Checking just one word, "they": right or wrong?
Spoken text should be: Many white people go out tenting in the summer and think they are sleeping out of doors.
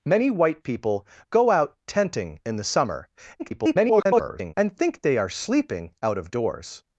right